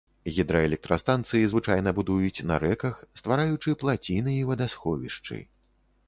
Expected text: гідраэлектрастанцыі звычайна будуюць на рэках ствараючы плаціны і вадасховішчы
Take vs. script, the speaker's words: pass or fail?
pass